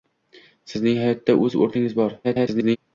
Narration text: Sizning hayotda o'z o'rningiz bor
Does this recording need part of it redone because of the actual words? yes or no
yes